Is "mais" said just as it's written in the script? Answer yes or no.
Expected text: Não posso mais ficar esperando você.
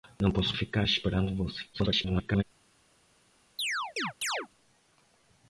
no